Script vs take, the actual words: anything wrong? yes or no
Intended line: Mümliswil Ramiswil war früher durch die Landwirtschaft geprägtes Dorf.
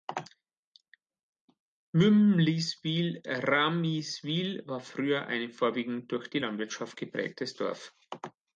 yes